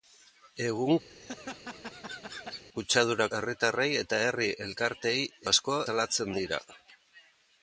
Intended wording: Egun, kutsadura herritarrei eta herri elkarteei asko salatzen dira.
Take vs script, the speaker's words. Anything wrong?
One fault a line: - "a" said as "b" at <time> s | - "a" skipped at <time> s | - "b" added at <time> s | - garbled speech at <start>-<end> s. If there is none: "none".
none